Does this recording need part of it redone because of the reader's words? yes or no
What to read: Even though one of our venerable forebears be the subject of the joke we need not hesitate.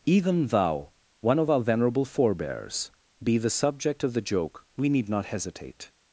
yes